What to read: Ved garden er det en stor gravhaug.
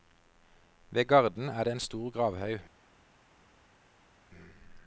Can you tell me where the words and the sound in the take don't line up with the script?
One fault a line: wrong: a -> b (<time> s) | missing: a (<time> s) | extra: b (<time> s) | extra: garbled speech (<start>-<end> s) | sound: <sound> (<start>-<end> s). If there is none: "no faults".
no faults